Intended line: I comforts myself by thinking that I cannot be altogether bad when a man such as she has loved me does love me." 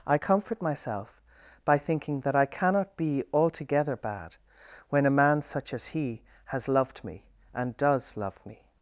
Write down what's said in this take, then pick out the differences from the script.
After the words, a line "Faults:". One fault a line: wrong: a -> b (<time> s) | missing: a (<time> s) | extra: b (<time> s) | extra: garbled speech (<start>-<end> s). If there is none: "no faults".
I comfort myself by thinking that I cannot be altogether bad when a man such as he has loved me and does love me."
Faults:
wrong: comforts -> comfort (0.1 s)
wrong: she -> he (5.9 s)
extra: and (7.5 s)